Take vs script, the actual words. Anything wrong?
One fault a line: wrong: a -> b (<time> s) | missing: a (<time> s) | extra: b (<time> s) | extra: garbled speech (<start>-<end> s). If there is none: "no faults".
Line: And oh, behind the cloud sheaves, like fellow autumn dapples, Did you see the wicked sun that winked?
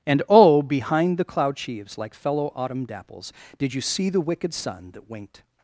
no faults